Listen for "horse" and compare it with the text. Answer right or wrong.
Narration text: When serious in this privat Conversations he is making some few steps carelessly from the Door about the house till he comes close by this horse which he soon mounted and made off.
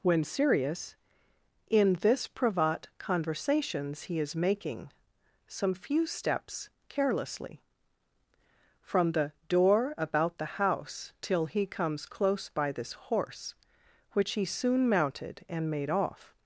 right